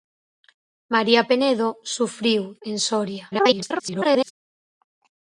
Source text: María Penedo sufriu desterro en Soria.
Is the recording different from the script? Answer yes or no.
yes